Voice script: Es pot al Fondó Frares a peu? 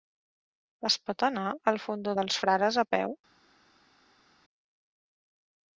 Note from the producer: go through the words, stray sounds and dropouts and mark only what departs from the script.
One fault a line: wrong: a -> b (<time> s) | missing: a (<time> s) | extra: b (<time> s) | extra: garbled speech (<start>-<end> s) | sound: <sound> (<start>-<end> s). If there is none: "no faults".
extra: anar (1.3 s)
extra: dels (2.2 s)